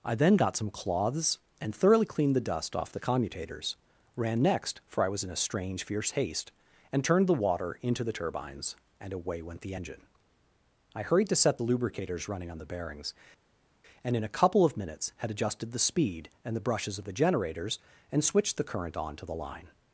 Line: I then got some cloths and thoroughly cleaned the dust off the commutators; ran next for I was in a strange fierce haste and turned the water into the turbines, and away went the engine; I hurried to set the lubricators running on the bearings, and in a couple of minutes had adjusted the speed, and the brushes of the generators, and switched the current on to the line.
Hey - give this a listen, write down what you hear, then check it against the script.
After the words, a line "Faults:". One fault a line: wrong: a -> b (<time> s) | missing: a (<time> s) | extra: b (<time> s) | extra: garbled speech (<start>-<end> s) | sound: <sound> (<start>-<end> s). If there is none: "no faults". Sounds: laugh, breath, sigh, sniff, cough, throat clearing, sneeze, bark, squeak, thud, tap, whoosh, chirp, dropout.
I then got some cloths and thoroughly cleaned the dust off the commutators; ran next for I was in a strange fierce haste and turned the water into the turbines, and away went the engine; I hurried to set the lubricators running on the bearings, and in a couple of minutes had adjusted the speed, and the brushes of the generators, and switched the current on to the line.
Faults:
no faults